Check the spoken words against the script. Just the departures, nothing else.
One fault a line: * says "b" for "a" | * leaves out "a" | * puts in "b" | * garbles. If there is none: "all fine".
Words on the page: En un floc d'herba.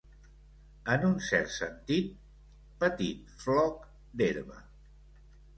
* puts in "cert sentit petit"